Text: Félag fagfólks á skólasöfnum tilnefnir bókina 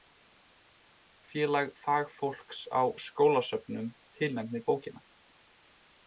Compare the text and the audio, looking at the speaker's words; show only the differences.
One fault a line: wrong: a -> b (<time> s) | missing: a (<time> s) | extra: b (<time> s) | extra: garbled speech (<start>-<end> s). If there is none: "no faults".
no faults